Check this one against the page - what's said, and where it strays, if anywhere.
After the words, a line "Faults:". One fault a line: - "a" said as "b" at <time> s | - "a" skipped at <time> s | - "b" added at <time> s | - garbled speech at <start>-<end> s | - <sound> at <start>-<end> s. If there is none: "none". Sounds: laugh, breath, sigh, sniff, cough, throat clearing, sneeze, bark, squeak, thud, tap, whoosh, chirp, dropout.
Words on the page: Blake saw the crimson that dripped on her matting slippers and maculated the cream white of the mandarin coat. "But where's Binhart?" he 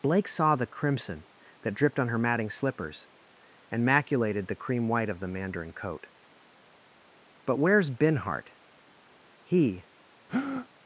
Blake saw the crimson that dripped on her matting slippers and maculated the cream white of the mandarin coat. "But where's Binhart?" he
Faults:
- breath at 10.3-10.7 s